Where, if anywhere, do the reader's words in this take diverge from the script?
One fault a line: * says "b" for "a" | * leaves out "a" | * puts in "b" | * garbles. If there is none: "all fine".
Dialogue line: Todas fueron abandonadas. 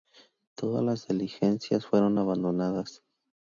* puts in "las diligencias"